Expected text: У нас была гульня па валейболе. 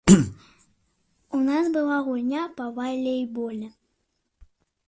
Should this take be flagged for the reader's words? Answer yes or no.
no